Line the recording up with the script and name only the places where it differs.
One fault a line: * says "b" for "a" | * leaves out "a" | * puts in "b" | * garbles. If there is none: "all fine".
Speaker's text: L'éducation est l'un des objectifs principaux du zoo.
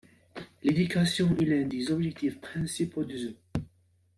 all fine